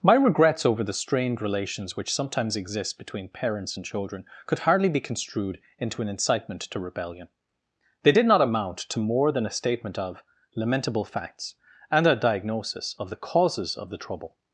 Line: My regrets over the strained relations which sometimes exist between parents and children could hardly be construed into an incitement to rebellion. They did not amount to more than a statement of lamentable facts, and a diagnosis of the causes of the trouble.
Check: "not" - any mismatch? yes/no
no